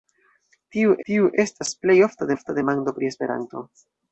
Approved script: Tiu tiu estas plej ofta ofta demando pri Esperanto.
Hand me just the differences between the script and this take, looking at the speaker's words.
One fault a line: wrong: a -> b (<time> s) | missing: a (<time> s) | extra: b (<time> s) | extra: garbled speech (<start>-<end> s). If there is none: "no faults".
no faults